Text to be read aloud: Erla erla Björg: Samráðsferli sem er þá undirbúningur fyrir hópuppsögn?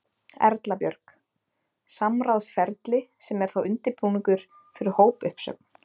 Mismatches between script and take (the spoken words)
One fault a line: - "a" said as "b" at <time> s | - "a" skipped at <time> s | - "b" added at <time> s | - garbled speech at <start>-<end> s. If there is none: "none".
- "erla" skipped at 0.8 s